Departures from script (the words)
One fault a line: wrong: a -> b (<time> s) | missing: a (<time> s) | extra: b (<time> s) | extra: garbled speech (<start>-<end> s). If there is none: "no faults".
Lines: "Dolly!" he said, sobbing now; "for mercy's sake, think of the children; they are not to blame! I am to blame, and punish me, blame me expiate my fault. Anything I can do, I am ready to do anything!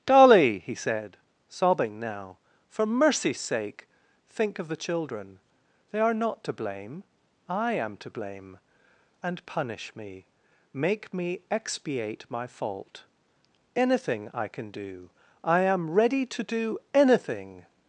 wrong: blame -> make (10.7 s)